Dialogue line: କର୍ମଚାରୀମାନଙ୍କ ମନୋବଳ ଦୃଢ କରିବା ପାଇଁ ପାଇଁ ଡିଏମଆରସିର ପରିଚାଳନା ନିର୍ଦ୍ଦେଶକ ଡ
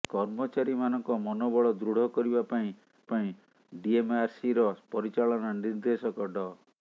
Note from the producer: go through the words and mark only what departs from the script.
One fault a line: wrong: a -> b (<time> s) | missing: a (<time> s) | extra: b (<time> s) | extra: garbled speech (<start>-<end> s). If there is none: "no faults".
no faults